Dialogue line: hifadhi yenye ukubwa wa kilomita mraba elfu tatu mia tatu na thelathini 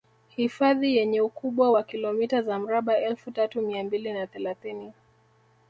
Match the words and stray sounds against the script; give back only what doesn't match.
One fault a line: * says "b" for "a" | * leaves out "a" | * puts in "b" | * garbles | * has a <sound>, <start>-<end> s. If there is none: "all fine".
* puts in "za"
* says "mbili" for "tatu"